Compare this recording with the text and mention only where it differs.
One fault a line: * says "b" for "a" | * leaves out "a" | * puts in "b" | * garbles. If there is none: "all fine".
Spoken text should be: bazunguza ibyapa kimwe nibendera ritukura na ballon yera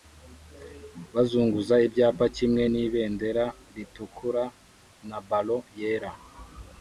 all fine